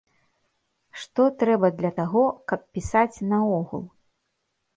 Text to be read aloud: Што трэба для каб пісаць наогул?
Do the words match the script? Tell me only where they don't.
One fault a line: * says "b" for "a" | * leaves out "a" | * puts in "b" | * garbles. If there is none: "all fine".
* puts in "таго"